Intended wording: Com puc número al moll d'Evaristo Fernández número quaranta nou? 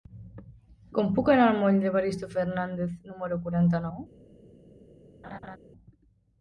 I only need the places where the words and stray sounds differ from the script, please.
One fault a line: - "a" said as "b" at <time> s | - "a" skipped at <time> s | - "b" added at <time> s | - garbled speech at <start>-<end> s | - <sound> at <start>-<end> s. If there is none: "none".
- "número" said as "anar" at 1.3 s
- laugh at 5.2-5.6 s